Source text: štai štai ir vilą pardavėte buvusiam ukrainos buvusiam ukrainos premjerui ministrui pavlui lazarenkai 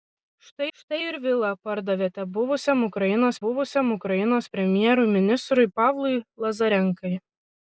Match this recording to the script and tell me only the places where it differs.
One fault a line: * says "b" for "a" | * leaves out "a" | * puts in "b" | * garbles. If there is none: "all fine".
all fine